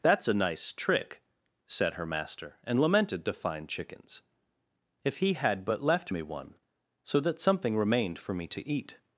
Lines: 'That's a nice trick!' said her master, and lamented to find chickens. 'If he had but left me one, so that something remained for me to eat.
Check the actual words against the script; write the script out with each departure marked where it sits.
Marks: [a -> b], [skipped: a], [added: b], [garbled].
'That's a nice trick!' said her master, and lamented to find chickens. 'If he had but left me one, so that something remained for me to eat.